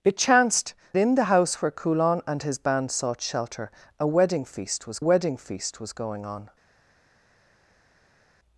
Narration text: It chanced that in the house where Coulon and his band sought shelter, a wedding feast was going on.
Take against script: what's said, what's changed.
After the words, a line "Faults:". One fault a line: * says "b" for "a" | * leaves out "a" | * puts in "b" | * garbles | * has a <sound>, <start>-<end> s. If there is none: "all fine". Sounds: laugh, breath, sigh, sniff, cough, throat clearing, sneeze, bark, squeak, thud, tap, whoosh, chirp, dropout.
It chanced in the house where Coulon and his band sought shelter, a wedding feast was wedding feast was going on.
Faults:
* leaves out "that"
* puts in "wedding feast was"